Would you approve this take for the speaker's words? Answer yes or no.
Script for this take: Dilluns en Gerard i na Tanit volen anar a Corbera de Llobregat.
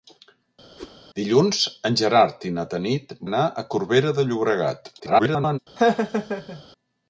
no